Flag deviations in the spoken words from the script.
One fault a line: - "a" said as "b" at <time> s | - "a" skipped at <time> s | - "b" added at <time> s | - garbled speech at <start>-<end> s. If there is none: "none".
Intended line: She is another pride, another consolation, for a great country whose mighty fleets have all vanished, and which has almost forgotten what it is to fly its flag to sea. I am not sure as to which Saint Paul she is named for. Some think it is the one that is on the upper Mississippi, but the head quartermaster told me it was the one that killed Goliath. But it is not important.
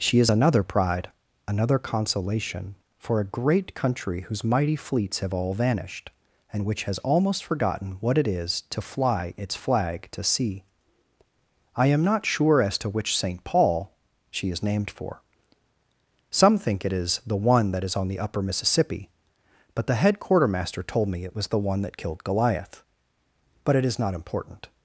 none